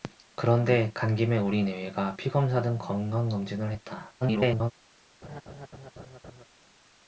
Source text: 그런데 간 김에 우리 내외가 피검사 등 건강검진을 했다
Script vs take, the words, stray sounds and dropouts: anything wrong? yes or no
yes